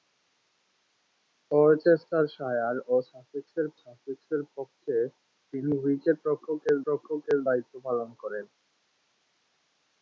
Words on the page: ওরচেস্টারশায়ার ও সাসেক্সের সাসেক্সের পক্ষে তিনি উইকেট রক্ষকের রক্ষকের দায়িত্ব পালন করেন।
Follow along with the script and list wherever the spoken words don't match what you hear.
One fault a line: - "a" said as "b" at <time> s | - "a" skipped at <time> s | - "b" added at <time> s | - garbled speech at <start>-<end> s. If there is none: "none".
none